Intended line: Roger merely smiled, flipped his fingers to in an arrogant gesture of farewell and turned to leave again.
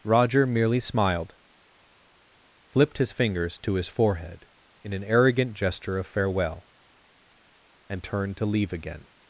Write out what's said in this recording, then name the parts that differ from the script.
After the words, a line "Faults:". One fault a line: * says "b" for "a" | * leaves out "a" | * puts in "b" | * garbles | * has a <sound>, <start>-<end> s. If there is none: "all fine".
Roger merely smiled, flipped his fingers to his forehead in an arrogant gesture of farewell and turned to leave again.
Faults:
* puts in "his forehead"